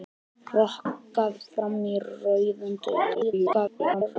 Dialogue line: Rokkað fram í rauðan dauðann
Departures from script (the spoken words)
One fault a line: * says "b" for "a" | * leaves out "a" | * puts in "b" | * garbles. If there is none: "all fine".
* garbles